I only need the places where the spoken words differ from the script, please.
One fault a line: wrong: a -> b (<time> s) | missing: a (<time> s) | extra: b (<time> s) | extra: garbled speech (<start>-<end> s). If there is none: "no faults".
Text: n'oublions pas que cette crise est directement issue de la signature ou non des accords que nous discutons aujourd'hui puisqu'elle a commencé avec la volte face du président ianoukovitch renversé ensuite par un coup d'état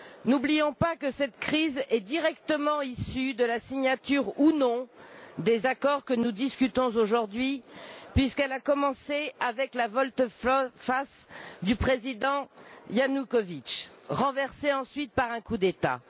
no faults